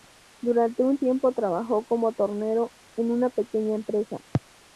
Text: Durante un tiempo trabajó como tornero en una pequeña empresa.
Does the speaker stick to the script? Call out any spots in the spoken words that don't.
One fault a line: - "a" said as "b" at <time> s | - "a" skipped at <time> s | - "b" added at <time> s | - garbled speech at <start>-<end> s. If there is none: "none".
none